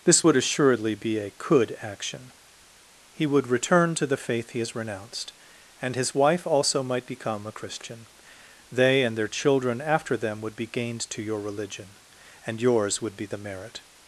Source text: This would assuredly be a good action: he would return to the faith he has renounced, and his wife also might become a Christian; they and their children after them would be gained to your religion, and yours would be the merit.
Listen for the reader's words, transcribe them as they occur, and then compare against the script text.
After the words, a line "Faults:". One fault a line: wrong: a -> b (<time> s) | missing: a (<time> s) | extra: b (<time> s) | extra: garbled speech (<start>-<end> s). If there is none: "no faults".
This would assuredly be a could action: he would return to the faith he has renounced, and his wife also might become a Christian; they and their children after them would be gained to your religion, and yours would be the merit.
Faults:
wrong: good -> could (1.3 s)